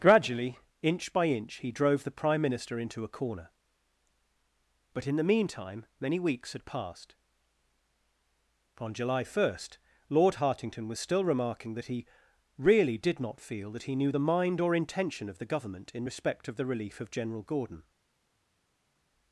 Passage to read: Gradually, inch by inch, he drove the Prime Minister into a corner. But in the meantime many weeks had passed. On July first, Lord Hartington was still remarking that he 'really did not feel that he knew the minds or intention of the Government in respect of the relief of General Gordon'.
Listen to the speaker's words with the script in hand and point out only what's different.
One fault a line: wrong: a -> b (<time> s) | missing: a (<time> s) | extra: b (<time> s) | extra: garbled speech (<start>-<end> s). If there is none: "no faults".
wrong: minds -> mind (14.3 s)